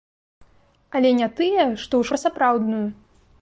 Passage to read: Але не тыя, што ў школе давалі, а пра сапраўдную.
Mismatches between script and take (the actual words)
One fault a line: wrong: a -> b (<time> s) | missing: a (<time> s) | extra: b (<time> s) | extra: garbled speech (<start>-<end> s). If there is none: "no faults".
missing: школе давалі а (2.0 s)